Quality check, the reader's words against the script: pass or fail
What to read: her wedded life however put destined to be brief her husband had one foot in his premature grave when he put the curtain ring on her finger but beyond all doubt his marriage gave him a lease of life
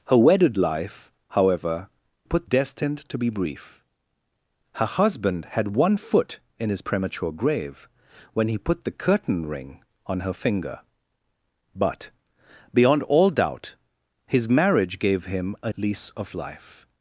pass